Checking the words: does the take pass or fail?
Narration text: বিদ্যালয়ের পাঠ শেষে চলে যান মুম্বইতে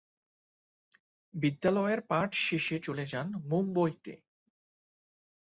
pass